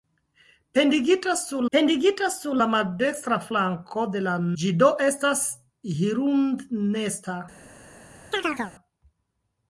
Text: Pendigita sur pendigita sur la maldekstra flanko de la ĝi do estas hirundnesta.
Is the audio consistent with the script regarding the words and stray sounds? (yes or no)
no